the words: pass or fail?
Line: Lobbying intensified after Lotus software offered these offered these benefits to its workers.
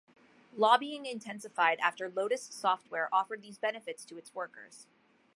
fail